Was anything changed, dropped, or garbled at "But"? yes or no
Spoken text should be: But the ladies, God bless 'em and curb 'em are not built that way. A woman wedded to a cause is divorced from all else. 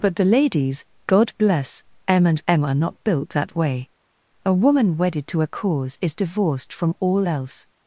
no